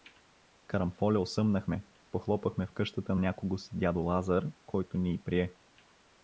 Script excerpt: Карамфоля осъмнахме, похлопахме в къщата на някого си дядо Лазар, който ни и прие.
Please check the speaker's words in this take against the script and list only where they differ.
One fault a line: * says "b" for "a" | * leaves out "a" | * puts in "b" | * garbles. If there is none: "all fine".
* leaves out "на"